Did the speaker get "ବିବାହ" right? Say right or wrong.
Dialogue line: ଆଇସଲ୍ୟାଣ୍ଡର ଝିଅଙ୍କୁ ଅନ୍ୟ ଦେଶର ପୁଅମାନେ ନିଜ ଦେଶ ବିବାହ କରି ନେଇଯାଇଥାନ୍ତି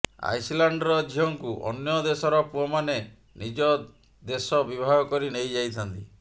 right